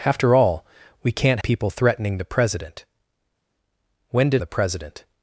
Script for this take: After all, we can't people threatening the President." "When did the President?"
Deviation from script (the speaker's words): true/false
false